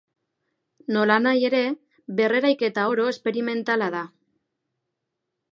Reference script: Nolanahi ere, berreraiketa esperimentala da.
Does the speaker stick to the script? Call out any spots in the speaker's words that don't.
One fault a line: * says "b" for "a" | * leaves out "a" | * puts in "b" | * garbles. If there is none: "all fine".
* puts in "oro"